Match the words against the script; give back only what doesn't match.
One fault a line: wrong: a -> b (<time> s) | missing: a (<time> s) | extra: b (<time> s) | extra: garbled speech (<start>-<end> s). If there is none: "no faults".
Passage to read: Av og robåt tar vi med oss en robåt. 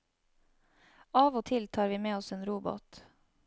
wrong: robåt -> til (1.5 s)